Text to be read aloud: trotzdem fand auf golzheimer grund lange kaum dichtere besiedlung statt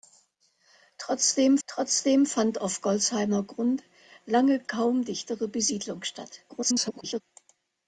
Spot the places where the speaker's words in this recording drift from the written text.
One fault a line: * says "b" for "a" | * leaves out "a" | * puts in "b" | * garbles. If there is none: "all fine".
* puts in "trotzdem"
* garbles